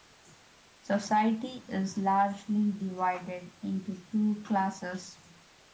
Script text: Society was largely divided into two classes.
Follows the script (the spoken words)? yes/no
no